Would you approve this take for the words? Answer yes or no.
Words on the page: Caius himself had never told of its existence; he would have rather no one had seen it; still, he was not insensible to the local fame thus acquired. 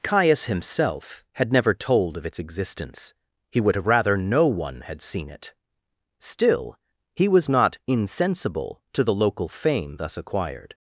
yes